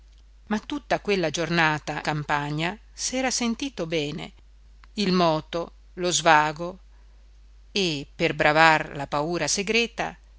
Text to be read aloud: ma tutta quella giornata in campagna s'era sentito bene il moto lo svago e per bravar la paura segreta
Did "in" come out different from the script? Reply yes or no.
yes